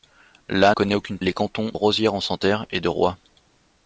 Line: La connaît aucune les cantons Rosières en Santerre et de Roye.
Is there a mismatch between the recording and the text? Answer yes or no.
no